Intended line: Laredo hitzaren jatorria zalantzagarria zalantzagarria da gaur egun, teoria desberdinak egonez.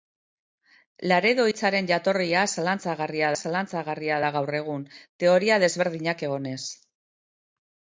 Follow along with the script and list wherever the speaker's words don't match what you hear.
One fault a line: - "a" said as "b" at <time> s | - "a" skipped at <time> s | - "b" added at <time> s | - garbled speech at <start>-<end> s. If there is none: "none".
none